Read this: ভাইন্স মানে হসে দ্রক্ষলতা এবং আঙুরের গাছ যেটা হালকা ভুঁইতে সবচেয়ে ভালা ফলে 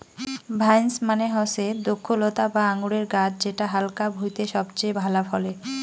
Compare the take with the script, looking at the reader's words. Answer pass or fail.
fail